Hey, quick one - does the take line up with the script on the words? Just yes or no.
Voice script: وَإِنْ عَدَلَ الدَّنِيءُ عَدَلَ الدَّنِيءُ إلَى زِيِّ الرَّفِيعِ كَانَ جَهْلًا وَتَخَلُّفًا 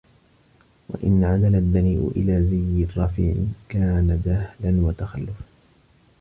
no